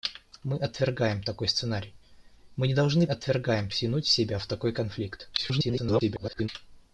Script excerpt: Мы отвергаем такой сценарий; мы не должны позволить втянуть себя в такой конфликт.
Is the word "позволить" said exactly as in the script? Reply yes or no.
no